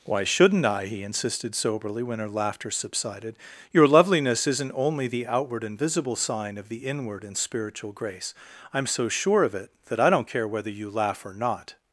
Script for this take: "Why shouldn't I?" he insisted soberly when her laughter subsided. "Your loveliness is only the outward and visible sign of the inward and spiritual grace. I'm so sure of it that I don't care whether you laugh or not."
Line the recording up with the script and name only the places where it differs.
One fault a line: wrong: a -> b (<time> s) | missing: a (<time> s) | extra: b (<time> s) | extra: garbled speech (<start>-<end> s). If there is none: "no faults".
wrong: is -> isn't (4.5 s)